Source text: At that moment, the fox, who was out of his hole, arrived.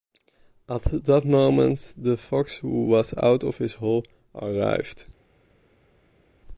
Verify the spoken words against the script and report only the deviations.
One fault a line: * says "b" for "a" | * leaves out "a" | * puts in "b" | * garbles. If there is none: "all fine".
all fine